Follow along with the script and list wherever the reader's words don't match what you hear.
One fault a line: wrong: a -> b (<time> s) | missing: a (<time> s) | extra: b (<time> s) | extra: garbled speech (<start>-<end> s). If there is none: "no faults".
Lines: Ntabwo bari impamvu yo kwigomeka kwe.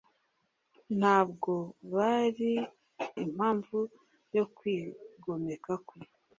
no faults